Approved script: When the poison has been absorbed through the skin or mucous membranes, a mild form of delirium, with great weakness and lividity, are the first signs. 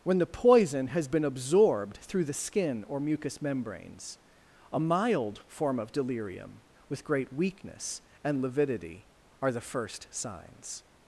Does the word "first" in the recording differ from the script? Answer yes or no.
no